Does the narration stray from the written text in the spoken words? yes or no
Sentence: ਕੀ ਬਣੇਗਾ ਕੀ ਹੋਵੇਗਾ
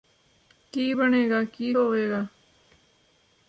no